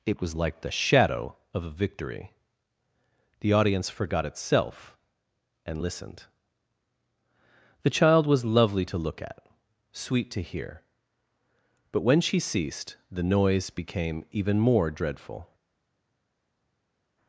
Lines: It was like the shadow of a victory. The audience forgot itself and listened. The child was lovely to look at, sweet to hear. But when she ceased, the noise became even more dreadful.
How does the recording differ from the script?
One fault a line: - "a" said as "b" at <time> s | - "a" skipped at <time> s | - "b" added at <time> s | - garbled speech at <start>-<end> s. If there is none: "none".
none